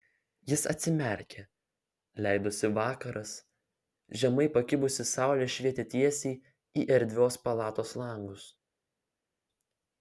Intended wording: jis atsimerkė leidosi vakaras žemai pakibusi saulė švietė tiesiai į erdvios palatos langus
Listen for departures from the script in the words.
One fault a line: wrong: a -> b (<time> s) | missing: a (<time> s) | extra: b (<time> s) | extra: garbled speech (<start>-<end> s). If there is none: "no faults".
no faults